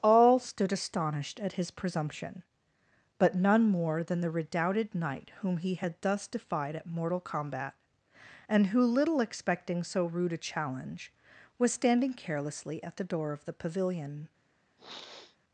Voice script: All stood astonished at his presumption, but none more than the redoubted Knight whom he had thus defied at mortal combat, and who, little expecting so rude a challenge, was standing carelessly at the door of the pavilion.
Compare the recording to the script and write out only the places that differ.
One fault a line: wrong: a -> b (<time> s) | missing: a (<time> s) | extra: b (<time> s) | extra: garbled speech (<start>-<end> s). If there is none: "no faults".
no faults